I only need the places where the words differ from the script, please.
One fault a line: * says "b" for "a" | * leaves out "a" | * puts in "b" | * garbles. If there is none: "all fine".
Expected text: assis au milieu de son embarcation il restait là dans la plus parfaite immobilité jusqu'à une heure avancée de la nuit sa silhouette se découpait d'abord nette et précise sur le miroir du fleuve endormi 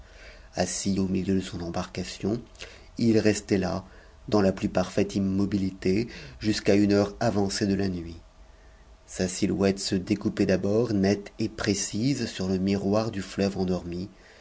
all fine